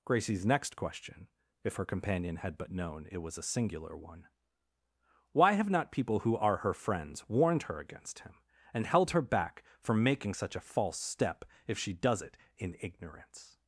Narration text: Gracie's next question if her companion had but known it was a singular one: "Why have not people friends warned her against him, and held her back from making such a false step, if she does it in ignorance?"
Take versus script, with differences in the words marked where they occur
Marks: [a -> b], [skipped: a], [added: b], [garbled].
Gracie's next question if her companion had but known it was a singular one: "Why have not people [added: who are her] friends warned her against him, and held her back from making such a false step, if she does it in ignorance?"